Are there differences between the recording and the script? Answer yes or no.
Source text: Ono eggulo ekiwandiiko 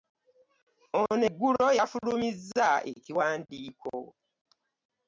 yes